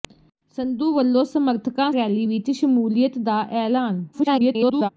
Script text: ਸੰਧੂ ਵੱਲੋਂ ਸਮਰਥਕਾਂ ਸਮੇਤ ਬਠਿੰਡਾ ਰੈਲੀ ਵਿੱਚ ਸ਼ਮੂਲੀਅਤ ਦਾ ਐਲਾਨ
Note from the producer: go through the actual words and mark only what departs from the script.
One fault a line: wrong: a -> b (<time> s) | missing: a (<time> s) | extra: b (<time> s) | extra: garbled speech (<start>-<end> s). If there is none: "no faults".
missing: ਸਮੇਤ ਬਠਿੰਡਾ (1.9 s)
extra: garbled speech (4.1-4.9 s)